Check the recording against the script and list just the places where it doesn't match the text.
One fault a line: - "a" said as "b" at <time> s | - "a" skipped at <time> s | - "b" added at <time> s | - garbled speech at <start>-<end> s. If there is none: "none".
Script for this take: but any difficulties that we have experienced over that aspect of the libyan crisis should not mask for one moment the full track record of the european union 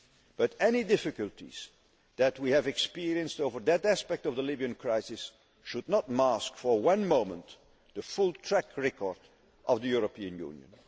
none